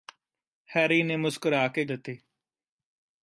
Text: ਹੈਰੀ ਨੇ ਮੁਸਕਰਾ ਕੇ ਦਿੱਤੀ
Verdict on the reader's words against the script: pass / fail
pass